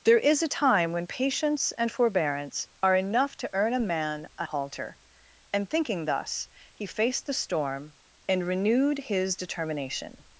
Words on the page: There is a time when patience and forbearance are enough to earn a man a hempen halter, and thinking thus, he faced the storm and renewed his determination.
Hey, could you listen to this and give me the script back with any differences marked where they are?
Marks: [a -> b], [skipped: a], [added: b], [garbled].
There is a time when patience and forbearance are enough to earn a man a [skipped: hempen] halter, and thinking thus, he faced the storm and renewed his determination.